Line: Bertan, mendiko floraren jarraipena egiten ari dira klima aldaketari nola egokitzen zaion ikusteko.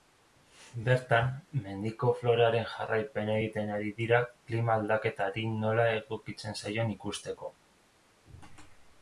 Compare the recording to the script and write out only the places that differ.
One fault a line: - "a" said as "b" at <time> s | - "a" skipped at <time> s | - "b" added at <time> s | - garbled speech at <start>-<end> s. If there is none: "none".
none